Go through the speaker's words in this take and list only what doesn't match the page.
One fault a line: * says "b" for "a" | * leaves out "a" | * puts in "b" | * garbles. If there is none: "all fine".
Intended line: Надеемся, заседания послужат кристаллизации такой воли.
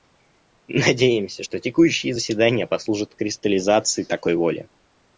* puts in "что текущие"